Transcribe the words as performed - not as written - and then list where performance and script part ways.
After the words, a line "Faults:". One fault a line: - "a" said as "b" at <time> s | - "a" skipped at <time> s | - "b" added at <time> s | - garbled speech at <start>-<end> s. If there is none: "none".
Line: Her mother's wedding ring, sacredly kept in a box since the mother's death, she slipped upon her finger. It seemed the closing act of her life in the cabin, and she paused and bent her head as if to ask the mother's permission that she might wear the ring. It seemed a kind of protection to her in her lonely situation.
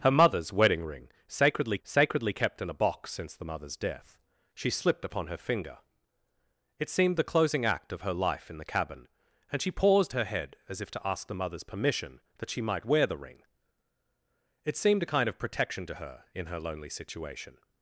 Her mother's wedding ring, sacredly sacredly kept in a box since the mother's death, she slipped upon her finger. It seemed the closing act of her life in the cabin, and she paused her head as if to ask the mother's permission that she might wear the ring. It seemed a kind of protection to her in her lonely situation.
Faults:
- "sacredly" added at 1.8 s
- "and bent" skipped at 10.1 s